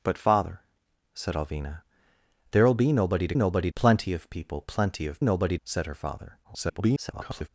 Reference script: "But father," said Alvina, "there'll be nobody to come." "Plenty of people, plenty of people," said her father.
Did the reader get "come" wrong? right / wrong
wrong